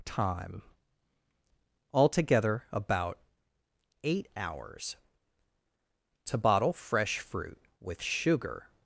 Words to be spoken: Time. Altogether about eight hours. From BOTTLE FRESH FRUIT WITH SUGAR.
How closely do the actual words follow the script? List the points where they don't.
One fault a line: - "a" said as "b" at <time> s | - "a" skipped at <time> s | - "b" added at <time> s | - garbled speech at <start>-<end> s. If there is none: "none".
- "From" said as "TO" at 6.2 s